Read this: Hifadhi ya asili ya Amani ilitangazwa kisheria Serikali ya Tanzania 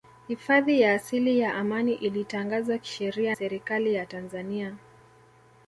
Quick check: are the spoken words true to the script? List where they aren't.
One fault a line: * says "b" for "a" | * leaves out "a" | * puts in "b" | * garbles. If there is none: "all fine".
all fine